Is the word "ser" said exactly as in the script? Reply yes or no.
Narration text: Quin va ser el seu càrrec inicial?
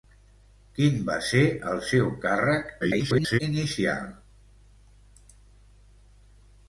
yes